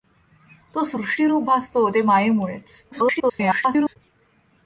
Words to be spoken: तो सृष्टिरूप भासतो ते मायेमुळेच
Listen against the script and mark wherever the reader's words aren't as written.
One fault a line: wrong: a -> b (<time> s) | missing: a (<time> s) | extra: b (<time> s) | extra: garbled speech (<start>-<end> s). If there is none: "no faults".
extra: garbled speech (2.9-4.0 s)